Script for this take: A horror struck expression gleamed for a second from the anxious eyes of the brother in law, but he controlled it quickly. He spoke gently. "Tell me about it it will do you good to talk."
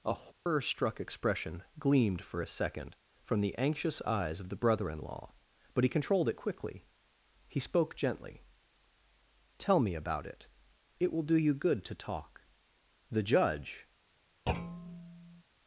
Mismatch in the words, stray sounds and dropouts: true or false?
true